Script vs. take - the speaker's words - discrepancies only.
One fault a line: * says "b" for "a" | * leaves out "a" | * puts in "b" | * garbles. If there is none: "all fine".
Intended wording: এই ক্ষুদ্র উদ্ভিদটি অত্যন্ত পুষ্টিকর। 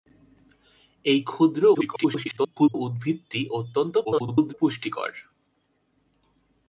* garbles
* garbles